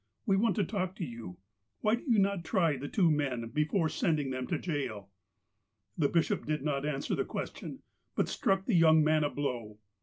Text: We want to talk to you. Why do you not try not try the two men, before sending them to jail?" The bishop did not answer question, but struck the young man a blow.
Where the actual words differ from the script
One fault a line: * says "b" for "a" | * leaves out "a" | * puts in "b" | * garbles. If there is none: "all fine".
* leaves out "not try"
* puts in "the"